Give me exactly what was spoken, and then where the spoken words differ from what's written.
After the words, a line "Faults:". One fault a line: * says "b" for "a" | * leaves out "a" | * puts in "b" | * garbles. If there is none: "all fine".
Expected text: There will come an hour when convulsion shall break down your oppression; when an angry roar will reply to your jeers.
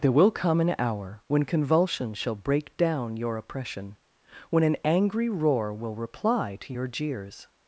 There will come an hour when convulsion shall break down your oppression; when an angry roar will reply to your jeers.
Faults:
all fine